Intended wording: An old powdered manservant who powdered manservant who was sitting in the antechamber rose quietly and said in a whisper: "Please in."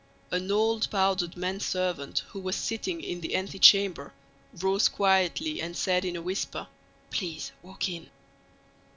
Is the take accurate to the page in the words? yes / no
no